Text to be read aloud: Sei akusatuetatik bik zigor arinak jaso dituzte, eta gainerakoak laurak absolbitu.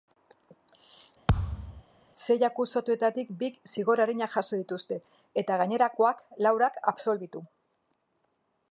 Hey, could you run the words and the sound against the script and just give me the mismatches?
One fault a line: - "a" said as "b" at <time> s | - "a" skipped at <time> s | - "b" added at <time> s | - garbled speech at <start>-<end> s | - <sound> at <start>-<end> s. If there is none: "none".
- thud at 1.3-1.8 s